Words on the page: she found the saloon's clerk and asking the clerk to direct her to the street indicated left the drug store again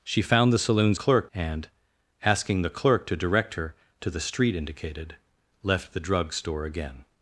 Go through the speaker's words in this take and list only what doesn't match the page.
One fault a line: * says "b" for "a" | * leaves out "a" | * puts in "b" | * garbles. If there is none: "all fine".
all fine